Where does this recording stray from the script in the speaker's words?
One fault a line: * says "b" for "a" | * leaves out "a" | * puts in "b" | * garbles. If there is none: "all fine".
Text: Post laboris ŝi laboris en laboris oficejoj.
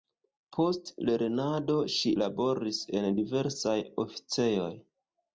* says "lernado" for "laboris"
* says "diversaj" for "laboris"